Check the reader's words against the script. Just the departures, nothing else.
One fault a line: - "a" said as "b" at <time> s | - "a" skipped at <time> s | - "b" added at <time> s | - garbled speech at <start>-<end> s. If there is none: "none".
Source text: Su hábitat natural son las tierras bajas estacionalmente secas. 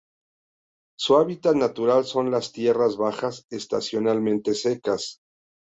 none